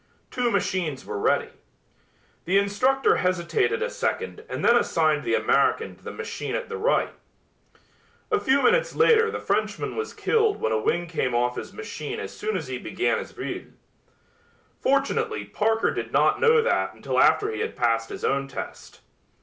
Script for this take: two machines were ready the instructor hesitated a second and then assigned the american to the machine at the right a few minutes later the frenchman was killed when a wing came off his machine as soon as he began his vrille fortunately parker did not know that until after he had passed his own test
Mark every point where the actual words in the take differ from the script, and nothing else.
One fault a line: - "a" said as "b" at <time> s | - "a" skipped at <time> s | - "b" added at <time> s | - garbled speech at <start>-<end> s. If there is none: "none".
none